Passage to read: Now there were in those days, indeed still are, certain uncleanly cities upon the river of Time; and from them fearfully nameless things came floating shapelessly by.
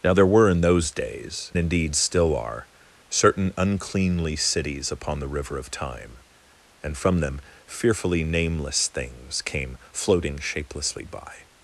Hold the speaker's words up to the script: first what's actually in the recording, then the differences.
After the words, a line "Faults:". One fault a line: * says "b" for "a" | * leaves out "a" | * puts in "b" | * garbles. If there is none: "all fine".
Now there were in those days, indeed still are, certain uncleanly cities upon the river of Time; and from them fearfully nameless things came floating shapelessly by.
Faults:
all fine